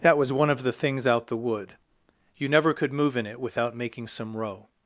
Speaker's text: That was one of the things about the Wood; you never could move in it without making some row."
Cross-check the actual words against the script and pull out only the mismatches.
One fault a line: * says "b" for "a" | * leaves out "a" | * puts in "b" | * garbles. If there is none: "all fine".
* says "out" for "about"